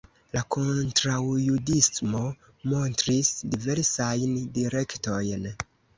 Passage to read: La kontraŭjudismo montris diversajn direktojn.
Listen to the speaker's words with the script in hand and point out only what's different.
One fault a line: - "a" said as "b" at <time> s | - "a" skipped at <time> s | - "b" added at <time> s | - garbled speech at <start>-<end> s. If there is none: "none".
none